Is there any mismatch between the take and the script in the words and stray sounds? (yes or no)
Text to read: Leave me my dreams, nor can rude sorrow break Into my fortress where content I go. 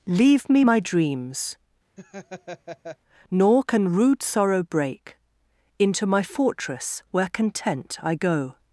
yes